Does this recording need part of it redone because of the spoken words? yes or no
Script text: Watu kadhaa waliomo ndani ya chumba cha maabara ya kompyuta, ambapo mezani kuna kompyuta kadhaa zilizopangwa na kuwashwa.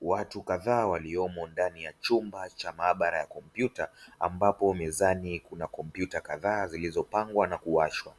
no